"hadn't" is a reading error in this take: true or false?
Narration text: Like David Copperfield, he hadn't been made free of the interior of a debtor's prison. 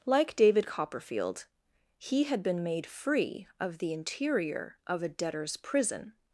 true